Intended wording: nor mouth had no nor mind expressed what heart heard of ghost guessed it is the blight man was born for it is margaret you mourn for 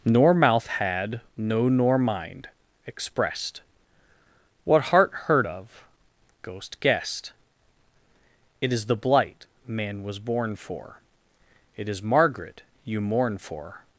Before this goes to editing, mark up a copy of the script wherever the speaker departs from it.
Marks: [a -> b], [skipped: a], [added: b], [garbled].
nor mouth had no nor mind expressed what heart heard of ghost guessed it is the blight man was born for it is margaret you mourn for